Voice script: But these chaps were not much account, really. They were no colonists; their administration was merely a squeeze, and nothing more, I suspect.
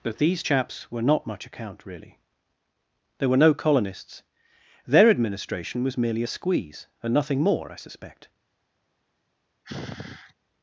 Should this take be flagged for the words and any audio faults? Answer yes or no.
yes